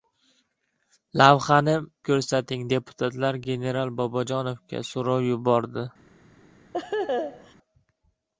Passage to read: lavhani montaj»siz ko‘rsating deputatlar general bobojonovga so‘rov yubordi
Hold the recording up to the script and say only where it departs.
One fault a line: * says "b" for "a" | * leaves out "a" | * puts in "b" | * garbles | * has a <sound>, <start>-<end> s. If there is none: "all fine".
* leaves out "montaj»siz"
* has a laugh, 6.7-7.5 s